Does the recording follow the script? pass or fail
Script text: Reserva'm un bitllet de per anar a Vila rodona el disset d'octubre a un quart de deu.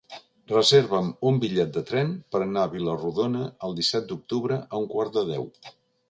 fail